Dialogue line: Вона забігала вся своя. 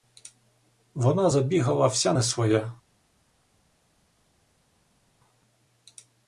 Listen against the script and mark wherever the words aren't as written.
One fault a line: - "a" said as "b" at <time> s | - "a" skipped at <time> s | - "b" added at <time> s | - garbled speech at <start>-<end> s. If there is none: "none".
- "не" added at 2.1 s